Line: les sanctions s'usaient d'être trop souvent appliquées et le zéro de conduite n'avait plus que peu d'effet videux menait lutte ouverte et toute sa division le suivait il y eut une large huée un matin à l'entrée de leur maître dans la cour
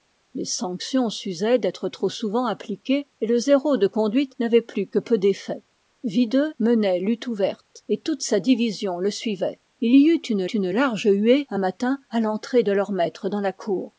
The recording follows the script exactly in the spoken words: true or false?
false